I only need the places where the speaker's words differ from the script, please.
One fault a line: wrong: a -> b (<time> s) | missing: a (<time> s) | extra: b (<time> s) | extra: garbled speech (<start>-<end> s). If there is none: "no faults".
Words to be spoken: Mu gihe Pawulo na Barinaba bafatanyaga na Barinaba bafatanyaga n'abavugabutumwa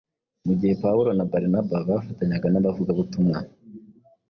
missing: na Barinaba bafatanyaga (2.5 s)